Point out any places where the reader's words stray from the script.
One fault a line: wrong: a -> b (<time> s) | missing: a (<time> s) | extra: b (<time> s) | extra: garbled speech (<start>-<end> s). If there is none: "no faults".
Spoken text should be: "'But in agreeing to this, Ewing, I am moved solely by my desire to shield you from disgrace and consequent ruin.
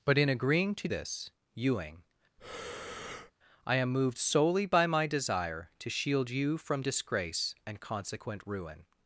no faults